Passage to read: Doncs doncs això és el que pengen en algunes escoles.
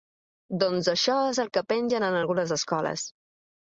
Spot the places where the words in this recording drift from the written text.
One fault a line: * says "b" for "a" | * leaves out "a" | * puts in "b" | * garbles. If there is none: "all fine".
* leaves out "doncs"